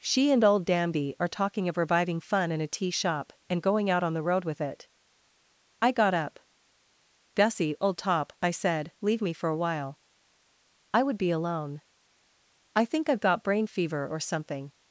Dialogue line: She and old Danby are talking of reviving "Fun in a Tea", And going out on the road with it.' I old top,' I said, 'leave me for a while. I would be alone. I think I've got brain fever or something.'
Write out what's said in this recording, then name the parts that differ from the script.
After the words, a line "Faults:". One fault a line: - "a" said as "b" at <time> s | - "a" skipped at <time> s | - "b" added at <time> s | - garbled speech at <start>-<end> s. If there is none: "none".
She and old Danby are talking of reviving "Fun in a Tea Shop", and going out on the road with it.' I got up. 'Gussie, old top,' I said, 'leave me for a while. I would be alone. I think I've got brain fever or something.'
Faults:
- "Shop" added at 2.9 s
- "got up Gussie" added at 5.9 s